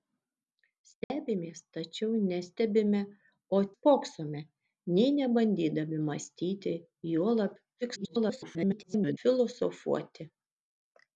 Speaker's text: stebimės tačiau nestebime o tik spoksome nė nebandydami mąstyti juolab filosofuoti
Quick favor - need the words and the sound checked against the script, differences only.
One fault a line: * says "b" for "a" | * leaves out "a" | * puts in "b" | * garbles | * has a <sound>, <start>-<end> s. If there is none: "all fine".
* has a dropout, 1.0-1.1 s
* leaves out "tik"
* garbles